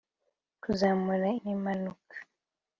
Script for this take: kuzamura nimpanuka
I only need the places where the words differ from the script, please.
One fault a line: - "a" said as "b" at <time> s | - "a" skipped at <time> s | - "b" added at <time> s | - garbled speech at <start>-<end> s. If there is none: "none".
none